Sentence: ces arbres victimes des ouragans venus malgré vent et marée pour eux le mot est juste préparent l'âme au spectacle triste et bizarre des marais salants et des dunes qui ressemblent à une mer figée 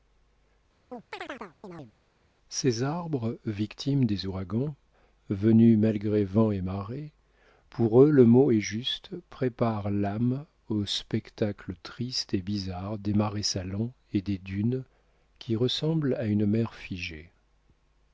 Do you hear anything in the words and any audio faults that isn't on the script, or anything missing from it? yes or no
yes